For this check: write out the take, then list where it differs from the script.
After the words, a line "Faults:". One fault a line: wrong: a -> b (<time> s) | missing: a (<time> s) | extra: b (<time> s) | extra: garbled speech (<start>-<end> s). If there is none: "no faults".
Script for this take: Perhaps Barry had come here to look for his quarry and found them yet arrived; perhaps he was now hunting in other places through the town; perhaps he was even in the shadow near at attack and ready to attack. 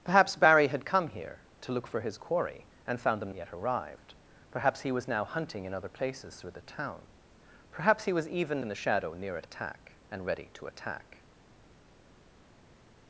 Perhaps Barry had come here to look for his quarry and found them yet arrived; perhaps he was now hunting in other places through the town; perhaps he was even in the shadow near at attack and ready to attack.
Faults:
no faults